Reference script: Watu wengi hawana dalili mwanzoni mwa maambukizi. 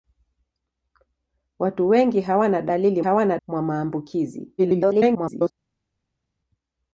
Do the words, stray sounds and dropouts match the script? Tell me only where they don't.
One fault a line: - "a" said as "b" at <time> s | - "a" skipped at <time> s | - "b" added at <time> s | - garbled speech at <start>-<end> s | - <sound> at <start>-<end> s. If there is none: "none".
- "mwanzoni" said as "hawana" at 3.0 s
- garbled speech at 4.6-5.5 s